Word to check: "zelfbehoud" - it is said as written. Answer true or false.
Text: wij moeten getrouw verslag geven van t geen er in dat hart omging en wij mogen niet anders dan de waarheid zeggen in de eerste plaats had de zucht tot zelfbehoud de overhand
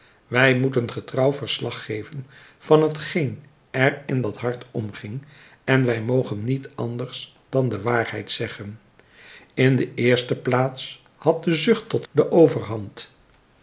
false